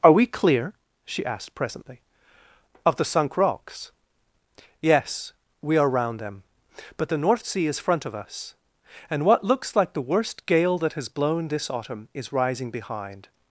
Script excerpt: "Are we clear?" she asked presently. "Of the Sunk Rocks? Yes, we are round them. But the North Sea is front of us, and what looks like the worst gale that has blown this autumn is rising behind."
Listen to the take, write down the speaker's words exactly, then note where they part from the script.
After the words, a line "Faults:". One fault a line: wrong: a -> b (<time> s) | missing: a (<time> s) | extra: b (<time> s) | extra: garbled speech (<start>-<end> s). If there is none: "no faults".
"Are we clear?" she asked presently. "Of the Sunk Rocks? Yes, we are round them. But the North Sea is front of us, and what looks like the worst gale that has blown this autumn is rising behind."
Faults:
no faults